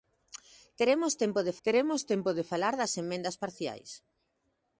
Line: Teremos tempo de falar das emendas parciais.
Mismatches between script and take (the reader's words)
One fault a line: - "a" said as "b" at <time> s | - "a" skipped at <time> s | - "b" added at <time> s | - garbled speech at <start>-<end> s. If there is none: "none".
- "teremos tempo de" added at 1.7 s